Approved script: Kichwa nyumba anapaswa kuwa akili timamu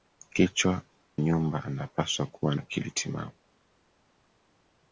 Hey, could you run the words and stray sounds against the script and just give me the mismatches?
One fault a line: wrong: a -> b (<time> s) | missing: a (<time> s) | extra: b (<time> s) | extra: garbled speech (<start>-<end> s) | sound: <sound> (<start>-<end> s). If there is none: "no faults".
no faults